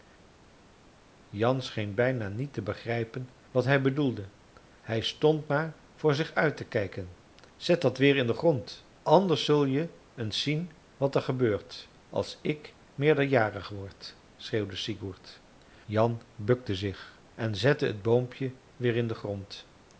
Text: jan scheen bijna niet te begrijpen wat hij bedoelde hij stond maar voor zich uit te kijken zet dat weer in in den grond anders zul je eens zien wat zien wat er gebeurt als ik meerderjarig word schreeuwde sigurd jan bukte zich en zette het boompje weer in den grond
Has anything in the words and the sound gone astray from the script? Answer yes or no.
yes